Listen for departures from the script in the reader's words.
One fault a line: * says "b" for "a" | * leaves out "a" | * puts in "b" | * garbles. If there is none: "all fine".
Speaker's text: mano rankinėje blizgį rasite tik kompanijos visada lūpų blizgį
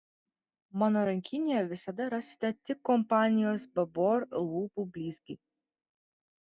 * says "visada" for "blizgį"
* says "babor" for "visada"